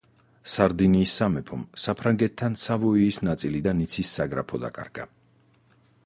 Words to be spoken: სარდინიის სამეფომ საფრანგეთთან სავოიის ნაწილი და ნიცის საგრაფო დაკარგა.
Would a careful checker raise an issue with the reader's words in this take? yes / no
no